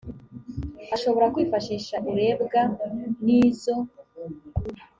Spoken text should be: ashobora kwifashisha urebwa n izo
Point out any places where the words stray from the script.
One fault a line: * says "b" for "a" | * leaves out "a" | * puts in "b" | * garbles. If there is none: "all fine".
all fine